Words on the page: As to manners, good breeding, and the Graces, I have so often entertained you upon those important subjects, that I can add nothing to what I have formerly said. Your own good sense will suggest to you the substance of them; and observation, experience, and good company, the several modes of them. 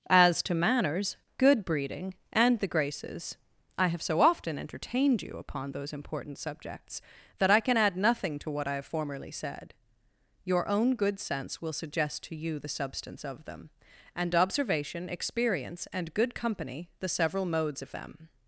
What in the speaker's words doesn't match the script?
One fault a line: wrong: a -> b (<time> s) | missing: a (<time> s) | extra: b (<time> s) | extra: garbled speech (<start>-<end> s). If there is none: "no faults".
no faults